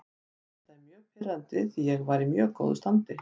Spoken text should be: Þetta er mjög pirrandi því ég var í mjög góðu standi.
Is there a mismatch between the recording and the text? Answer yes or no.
no